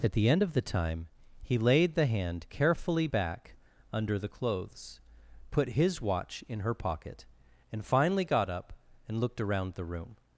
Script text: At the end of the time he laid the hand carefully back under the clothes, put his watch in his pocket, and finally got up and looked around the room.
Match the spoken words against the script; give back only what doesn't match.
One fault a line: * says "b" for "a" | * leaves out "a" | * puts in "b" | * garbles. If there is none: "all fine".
* says "her" for "his"